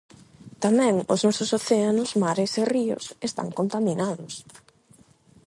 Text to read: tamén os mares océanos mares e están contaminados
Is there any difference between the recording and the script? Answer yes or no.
yes